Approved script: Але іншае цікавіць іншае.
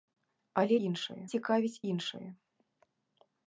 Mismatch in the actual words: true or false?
false